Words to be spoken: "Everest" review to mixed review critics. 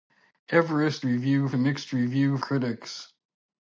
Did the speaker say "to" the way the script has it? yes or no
yes